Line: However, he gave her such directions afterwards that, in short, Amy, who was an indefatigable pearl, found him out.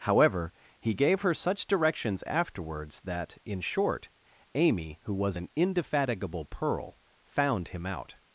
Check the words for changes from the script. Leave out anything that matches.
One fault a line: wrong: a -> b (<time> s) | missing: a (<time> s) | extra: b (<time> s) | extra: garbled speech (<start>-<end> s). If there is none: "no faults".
no faults